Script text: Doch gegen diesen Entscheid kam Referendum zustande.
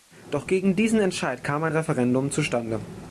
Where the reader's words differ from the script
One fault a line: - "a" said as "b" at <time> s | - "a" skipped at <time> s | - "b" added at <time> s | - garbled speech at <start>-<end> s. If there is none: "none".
- "ein" added at 1.6 s